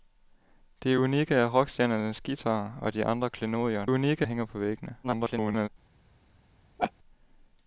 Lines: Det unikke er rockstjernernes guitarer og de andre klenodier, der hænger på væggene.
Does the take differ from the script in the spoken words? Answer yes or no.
yes